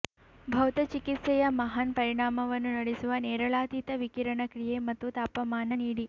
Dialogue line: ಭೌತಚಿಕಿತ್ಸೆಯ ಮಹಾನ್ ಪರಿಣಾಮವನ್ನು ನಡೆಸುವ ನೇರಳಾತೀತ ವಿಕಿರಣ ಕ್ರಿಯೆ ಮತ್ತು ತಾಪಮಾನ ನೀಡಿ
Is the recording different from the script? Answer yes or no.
no